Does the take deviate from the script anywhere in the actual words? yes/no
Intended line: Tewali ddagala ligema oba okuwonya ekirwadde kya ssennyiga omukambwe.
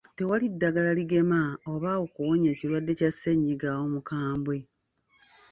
no